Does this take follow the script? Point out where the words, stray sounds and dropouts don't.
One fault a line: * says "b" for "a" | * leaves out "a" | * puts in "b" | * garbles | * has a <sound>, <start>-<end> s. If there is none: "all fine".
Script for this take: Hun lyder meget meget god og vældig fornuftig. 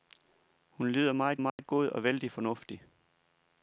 * has a dropout, 1.5-1.6 s